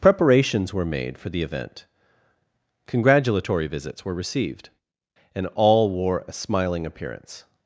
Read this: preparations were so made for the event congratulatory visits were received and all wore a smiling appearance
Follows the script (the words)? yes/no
no